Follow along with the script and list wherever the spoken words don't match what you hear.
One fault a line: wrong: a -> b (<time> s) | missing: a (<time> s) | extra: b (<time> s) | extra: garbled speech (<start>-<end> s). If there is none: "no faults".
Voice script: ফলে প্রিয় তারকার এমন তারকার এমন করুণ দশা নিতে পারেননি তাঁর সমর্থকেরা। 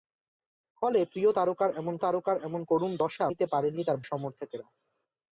no faults